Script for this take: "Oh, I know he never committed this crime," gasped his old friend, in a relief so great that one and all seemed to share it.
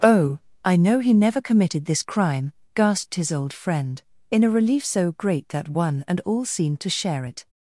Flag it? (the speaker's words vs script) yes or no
no